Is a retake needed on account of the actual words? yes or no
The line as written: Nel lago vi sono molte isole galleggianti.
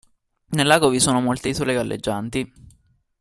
no